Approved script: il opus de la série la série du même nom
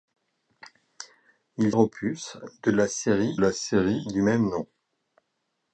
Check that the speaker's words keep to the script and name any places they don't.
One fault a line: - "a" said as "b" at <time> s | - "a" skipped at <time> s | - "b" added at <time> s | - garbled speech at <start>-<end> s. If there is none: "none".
none